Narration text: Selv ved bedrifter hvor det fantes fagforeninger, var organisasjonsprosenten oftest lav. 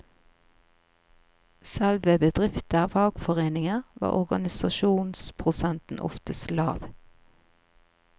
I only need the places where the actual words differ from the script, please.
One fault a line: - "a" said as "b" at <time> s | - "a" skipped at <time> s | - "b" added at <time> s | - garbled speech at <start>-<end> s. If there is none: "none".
- "hvor det fantes" skipped at 2.9 s